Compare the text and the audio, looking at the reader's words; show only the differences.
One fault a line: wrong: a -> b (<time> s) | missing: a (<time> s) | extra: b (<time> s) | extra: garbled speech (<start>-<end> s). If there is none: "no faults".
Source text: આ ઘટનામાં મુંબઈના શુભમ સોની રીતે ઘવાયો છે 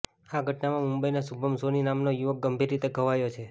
extra: નામનો યુવક ગંભીર (1.9 s)